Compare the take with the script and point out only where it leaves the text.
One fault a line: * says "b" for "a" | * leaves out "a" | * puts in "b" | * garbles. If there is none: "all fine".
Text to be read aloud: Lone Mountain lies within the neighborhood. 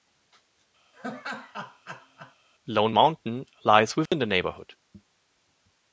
all fine